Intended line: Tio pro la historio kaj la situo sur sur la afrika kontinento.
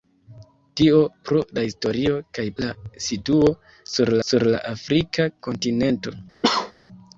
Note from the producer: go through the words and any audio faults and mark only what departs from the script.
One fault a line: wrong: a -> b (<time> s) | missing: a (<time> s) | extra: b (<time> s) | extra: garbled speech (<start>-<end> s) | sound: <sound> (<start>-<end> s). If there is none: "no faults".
sound: cough (6.4-6.7 s)